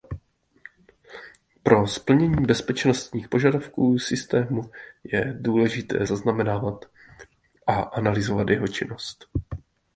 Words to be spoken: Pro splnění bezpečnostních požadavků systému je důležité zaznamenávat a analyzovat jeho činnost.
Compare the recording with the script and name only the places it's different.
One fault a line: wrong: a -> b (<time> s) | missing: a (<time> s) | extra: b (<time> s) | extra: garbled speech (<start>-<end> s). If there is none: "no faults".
no faults